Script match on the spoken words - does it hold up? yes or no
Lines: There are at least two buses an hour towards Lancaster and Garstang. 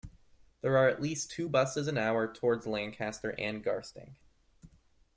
yes